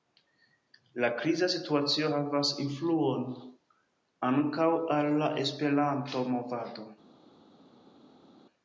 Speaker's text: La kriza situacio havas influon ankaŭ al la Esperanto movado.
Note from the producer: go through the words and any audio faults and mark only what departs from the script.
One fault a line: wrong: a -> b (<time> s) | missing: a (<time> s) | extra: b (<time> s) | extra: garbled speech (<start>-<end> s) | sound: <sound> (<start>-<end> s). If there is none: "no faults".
no faults